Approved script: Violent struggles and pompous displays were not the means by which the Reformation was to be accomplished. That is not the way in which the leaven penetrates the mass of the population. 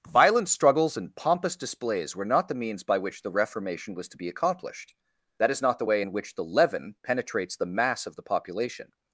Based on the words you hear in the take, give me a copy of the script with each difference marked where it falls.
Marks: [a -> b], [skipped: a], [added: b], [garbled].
Violent struggles and pompous displays were not the means by which the Reformation was to be accomplished. That is not the way in which the leaven penetrates the mass of the population.